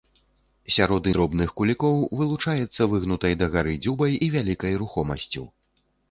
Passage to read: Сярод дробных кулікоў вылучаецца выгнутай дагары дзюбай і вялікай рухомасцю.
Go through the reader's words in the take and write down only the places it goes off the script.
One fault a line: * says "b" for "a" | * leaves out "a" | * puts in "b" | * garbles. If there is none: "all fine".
all fine